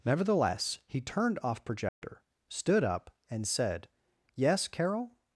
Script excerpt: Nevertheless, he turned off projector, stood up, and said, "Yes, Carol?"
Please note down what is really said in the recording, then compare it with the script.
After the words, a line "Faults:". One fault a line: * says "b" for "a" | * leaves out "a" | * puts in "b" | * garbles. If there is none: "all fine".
Nevertheless, he turned off projector, stood up, and said, "Yes, Carol?"
Faults:
all fine